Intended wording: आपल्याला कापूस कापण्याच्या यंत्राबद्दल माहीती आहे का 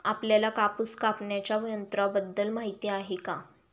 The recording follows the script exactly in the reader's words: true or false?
true